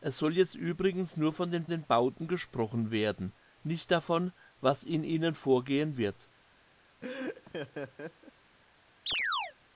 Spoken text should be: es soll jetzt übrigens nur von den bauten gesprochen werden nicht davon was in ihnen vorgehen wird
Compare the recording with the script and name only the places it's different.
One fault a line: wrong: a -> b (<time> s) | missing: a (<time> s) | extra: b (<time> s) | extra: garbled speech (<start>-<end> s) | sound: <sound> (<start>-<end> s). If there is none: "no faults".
extra: den (1.7 s)
sound: laugh (7.0-8.3 s)
sound: chirp (9.1-9.5 s)